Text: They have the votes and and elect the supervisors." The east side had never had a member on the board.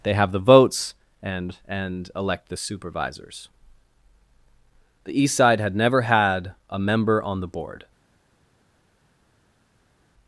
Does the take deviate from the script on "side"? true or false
false